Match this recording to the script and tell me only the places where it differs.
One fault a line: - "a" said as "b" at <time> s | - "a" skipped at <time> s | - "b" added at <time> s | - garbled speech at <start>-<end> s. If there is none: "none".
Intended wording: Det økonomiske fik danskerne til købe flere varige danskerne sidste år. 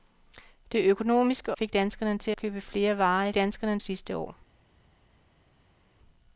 none